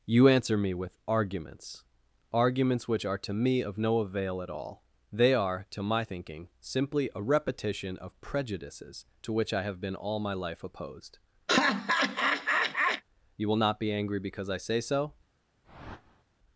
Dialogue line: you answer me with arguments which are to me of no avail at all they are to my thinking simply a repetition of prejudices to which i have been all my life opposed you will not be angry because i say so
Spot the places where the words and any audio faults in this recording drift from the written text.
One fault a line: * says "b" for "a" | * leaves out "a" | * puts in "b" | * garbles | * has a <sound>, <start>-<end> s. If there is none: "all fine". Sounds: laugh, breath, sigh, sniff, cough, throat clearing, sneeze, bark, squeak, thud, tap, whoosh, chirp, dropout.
* puts in "arguments"
* has a laugh, 11.5-13.0 s
* has a whoosh, 15.6-16.2 s